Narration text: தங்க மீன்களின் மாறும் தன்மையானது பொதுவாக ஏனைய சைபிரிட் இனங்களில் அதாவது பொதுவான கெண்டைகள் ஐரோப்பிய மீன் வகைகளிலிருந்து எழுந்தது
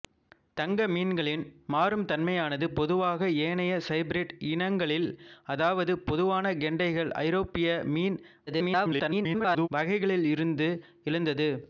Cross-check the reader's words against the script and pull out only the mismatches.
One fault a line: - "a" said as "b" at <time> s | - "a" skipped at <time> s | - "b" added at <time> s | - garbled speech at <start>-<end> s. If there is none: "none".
- garbled speech at 8.5-9.7 s